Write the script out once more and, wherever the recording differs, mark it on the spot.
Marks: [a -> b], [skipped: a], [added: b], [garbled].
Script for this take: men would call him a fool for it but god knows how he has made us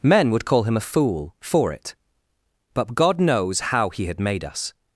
men would call him a fool for it but god knows how he [has -> had] made us